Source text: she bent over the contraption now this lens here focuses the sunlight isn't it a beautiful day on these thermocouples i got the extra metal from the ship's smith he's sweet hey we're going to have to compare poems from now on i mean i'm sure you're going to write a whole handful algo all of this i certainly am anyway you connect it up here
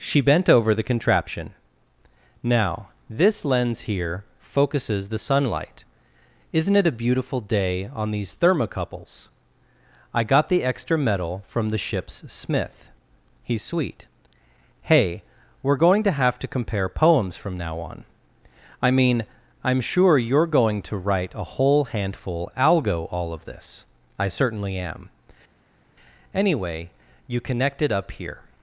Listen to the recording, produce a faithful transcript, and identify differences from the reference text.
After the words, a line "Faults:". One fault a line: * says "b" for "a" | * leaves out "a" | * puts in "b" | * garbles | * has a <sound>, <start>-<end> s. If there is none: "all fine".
she bent over the contraption now this lens here focuses the sunlight isn't it a beautiful day on these thermocouples i got the extra metal from the ship's smith he's sweet hey we're going to have to compare poems from now on i mean i'm sure you're going to write a whole handful algo all of this i certainly am anyway you connect it up here
Faults:
all fine